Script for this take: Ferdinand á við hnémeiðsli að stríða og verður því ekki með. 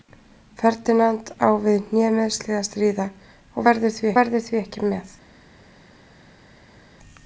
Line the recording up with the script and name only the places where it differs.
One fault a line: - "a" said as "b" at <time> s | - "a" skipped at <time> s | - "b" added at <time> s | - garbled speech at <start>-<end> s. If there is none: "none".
- "verður því" added at 4.2 s